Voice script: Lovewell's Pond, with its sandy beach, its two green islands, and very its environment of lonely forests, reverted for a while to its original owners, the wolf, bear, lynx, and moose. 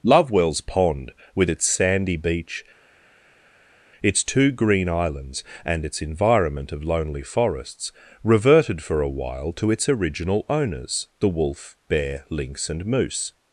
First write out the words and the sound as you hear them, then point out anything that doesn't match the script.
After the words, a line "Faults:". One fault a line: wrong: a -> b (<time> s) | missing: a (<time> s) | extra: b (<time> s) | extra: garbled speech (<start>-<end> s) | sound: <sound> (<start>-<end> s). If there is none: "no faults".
Lovewell's Pond, with its sandy beach, its two green islands, and its environment of lonely forests, reverted for a while to its original owners, the wolf, bear, lynx, and moose.
Faults:
missing: very (5.8 s)